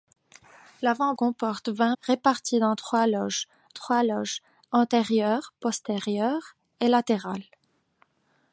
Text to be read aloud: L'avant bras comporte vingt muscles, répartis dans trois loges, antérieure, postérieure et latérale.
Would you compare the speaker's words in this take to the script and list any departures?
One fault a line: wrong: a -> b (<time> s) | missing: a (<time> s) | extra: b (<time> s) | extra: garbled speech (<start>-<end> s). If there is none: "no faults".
missing: bras (1.1 s)
missing: muscles (1.9 s)
extra: trois loges (3.7 s)